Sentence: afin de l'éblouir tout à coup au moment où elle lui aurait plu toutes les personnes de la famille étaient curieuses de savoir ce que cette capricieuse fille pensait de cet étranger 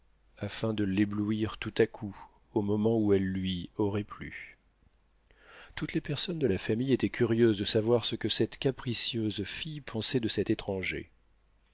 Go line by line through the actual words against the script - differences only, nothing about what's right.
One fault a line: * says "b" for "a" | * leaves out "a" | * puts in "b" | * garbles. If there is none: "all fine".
all fine